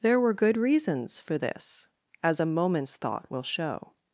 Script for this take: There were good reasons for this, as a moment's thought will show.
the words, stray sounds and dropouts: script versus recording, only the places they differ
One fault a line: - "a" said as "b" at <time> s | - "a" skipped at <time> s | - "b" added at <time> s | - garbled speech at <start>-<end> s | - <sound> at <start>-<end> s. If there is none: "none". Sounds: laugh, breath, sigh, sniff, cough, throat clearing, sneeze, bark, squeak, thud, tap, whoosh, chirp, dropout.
none